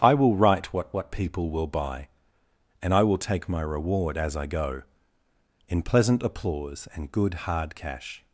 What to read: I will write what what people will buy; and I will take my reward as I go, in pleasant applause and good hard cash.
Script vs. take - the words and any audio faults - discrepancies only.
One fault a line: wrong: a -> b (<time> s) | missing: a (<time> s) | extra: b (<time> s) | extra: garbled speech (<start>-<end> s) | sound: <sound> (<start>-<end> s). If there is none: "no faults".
no faults